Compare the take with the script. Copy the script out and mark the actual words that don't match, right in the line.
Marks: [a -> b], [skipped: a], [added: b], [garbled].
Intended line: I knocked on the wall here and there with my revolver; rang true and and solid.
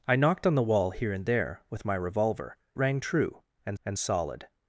I knocked on the wall here and there with my revolver; rang true and and solid.